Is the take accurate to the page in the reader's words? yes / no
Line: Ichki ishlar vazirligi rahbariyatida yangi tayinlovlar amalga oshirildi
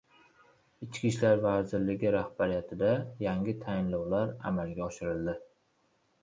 yes